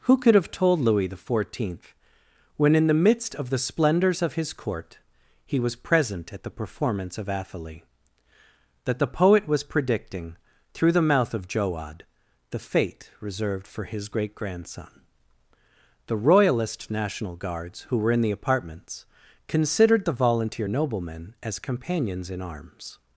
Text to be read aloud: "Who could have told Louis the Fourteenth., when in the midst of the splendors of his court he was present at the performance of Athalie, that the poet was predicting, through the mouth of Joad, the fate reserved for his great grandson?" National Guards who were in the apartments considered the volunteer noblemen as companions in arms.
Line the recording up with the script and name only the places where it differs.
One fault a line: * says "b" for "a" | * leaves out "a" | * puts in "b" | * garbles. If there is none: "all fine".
* puts in "The royalist"